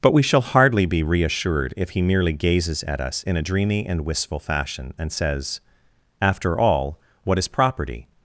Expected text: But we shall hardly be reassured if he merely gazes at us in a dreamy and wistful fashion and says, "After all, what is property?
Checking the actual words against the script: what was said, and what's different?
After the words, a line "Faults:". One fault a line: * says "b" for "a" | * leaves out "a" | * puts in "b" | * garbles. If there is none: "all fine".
But we shall hardly be reassured if he merely gazes at us in a dreamy and wistful fashion and says, "After all, what is property?
Faults:
all fine